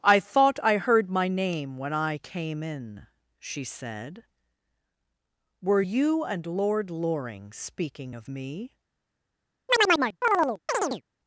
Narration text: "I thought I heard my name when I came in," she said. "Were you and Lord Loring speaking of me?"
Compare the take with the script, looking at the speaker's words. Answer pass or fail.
pass